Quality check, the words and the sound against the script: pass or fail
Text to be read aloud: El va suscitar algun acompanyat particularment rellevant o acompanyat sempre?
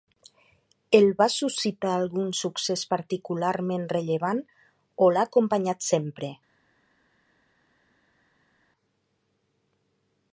fail